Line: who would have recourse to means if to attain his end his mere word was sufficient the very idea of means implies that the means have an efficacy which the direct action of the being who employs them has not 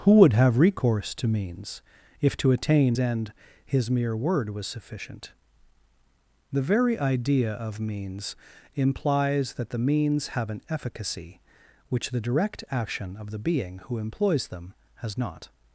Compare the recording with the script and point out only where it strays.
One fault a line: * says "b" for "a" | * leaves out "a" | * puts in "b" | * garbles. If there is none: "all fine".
* leaves out "his"